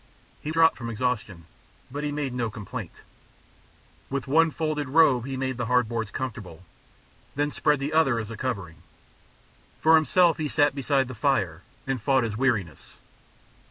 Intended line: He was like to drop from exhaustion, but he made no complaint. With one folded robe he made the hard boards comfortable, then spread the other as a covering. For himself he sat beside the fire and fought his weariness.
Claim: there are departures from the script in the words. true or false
true